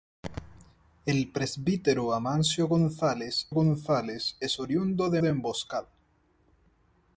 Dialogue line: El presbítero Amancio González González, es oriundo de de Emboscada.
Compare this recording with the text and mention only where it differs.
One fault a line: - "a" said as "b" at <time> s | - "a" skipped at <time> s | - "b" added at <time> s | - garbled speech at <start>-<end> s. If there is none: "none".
none